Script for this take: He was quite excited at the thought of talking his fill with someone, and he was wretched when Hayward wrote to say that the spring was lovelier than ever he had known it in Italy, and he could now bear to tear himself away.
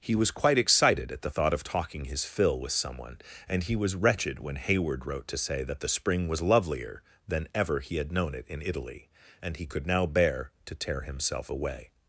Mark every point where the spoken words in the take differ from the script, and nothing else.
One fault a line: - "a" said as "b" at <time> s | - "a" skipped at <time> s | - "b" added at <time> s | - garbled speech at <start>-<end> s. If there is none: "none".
none